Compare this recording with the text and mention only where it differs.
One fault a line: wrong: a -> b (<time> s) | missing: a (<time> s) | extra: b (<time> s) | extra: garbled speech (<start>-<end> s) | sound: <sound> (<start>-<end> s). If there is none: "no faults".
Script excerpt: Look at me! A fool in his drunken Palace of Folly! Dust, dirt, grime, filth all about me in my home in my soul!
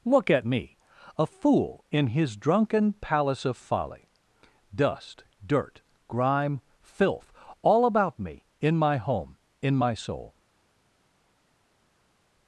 no faults